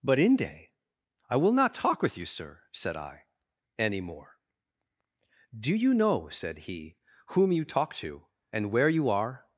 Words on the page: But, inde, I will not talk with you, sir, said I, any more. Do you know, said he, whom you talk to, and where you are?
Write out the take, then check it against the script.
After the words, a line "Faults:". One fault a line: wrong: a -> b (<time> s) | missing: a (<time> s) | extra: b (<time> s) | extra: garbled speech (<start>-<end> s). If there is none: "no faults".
But, inde, I will not talk with you, sir, said I, any more. Do you know, said he, whom you talk to, and where you are?
Faults:
no faults